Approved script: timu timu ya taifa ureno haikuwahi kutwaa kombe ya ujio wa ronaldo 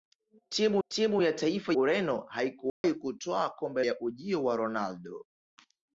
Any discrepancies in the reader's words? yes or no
no